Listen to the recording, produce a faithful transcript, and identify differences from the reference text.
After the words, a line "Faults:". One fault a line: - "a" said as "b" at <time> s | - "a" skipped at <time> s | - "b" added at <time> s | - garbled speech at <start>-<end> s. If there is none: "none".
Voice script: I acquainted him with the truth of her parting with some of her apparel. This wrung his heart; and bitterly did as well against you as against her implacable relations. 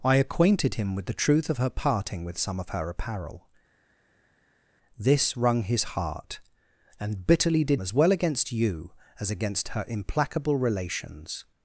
I acquainted him with the truth of her parting with some of her apparel. This wrung his heart; and bitterly did as well against you as against her implacable relations.
Faults:
none